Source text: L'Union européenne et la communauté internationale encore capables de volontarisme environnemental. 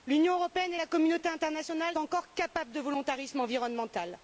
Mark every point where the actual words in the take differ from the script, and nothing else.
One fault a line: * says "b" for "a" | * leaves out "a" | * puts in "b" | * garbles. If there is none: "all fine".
all fine